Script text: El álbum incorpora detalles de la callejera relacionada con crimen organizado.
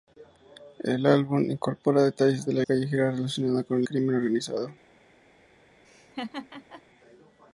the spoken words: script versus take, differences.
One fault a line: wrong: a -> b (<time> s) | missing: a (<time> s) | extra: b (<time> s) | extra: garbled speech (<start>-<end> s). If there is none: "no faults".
no faults